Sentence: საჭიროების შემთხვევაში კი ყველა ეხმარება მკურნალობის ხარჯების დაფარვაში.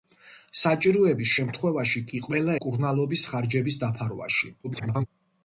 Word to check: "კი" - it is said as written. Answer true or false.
true